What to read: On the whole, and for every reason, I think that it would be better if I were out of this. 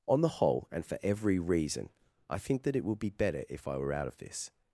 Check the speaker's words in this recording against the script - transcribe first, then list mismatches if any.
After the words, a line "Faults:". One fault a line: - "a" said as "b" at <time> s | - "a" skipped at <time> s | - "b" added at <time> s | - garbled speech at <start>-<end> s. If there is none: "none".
On the whole, and for every reason, I think that it would be better if I were out of this.
Faults:
none